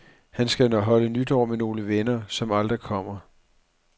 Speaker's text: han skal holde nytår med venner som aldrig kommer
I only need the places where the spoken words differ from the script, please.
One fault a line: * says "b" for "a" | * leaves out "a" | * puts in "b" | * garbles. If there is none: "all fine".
* puts in "nogle"